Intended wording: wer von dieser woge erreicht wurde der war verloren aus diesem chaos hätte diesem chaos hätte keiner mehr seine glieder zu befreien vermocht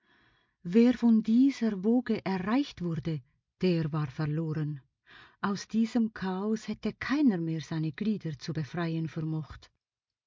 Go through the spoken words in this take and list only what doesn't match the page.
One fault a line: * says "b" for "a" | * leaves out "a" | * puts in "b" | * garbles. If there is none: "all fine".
* leaves out "diesem chaos hätte"